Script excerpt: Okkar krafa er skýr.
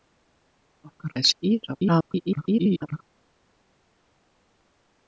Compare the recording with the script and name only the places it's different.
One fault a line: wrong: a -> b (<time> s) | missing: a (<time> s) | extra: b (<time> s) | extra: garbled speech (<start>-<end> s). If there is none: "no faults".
missing: krafa (1.1 s)
extra: garbled speech (1.7-3.0 s)